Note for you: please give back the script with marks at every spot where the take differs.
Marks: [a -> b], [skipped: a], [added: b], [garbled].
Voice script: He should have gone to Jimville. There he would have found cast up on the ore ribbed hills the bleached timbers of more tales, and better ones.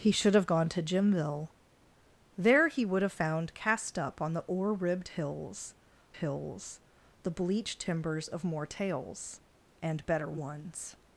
He should have gone to Jimville. There he would have found cast up on the ore ribbed hills [added: hills] the bleached timbers of more tales, and better ones.